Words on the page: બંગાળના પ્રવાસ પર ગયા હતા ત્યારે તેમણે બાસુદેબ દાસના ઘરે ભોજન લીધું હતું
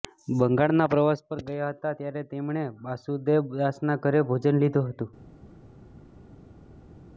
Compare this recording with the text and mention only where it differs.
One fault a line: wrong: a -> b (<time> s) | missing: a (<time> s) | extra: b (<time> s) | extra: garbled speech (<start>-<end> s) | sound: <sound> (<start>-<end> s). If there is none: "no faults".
no faults